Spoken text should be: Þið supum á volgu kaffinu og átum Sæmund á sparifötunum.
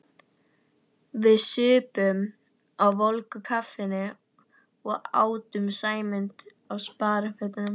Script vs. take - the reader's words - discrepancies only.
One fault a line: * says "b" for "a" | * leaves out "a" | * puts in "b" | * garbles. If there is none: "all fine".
* says "Við" for "Þið"